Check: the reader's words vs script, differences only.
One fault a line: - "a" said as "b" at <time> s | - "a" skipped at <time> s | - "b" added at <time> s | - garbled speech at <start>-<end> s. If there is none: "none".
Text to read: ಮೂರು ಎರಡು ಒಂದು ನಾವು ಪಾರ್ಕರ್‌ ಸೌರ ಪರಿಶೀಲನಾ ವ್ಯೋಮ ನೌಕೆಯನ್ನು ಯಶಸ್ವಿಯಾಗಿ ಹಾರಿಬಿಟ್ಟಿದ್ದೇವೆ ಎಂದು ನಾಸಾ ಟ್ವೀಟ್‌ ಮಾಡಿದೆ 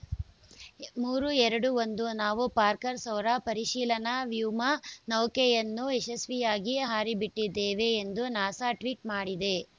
none